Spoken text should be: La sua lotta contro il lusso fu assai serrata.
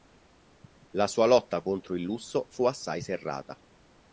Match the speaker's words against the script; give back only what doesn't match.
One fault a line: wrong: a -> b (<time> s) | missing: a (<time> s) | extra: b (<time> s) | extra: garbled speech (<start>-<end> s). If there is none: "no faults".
no faults